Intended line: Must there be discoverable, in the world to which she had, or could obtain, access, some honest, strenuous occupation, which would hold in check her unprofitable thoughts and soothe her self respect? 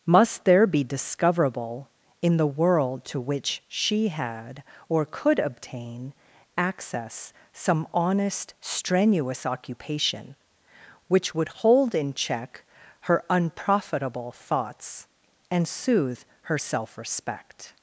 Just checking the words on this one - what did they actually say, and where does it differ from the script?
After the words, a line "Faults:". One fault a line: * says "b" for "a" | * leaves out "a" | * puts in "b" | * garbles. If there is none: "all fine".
Must there be discoverable, in the world to which she had, or could obtain, access, some honest, strenuous occupation, which would hold in check her unprofitable thoughts and soothe her self respect?
Faults:
all fine